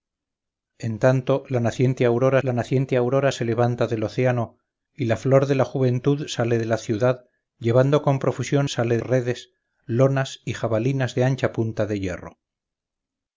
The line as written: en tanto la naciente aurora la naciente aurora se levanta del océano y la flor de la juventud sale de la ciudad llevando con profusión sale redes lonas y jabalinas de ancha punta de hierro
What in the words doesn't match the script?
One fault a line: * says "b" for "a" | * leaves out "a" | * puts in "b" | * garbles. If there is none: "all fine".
all fine